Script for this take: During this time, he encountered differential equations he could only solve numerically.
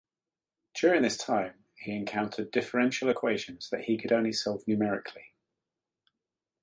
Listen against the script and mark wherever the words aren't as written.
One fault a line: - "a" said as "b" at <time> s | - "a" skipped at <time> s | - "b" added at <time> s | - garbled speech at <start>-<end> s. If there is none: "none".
- "that" added at 3.7 s